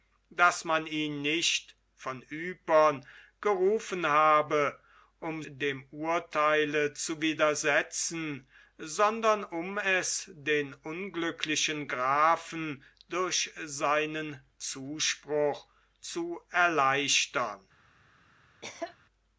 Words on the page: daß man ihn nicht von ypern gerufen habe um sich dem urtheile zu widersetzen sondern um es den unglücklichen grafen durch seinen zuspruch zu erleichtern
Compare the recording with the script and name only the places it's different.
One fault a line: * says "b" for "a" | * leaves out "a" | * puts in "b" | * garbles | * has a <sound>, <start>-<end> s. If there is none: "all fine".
* leaves out "sich"
* has a cough, 18.6-19.0 s